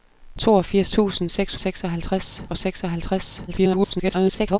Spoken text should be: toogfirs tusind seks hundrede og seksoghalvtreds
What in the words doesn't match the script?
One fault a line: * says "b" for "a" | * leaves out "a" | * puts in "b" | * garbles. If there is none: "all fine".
* says "seksoghalvtreds" for "hundrede"
* garbles